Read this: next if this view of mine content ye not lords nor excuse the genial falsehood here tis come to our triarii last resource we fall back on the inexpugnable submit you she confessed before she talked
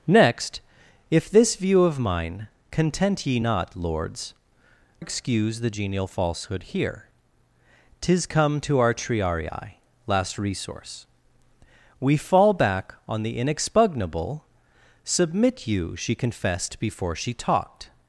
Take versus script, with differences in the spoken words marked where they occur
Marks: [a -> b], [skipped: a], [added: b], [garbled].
next if this view of mine content ye not lords [skipped: nor] excuse the genial falsehood here tis come to our triarii last resource we fall back on the inexpugnable submit you she confessed before she talked